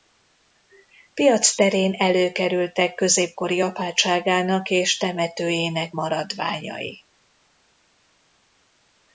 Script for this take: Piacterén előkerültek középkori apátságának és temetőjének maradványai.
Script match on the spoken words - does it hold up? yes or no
yes